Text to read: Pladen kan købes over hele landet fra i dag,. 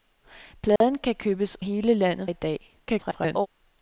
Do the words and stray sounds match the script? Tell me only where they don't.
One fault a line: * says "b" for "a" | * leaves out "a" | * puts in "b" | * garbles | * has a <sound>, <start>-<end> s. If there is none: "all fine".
* has a dropout, 0.8-0.8 s
* leaves out "over"
* leaves out "fra"
* garbles